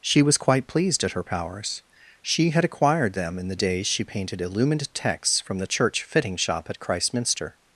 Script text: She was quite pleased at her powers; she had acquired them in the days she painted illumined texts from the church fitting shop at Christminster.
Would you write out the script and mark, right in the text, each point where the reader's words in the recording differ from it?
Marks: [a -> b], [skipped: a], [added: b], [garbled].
She was quite pleased at her powers; she had acquired them in the days she painted illumined texts from the church fitting shop at Christminster.